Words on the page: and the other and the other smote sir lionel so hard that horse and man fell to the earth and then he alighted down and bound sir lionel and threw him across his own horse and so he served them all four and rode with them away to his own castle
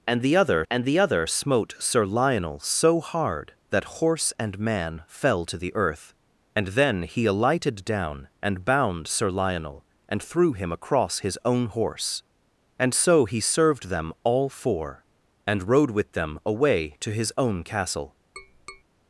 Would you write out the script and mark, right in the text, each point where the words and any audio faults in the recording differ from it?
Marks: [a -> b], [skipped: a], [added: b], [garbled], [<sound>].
and the other and the other smote sir lionel so hard that horse and man fell to the earth and then he alighted down and bound sir lionel and threw him across his own horse and so he served them all four and rode with them away to his own castle [tap]